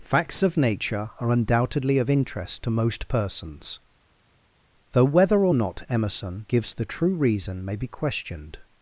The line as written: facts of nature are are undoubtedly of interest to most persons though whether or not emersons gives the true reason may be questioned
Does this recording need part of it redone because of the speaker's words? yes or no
yes